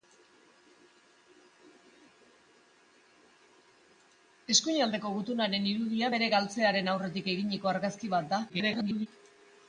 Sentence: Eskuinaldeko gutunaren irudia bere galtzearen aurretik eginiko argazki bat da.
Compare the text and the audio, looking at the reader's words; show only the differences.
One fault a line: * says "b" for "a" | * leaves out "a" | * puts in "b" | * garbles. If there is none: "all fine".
* garbles